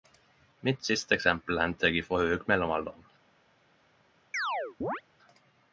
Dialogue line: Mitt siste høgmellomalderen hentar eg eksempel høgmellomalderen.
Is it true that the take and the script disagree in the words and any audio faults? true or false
true